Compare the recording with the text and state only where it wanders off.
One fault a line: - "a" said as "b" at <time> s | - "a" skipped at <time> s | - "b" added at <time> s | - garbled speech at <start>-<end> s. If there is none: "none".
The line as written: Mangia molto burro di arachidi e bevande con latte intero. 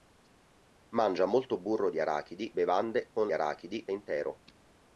- "e" skipped at 2.5 s
- "latte" said as "arachidi" at 3.3 s